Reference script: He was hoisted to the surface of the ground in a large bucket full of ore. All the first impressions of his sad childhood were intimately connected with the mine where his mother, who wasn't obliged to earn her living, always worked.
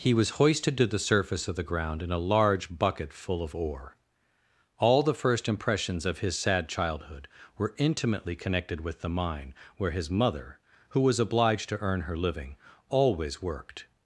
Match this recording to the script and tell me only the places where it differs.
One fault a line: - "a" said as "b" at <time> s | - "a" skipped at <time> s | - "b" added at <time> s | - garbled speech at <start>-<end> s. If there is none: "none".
- "wasn't" said as "was" at 11.0 s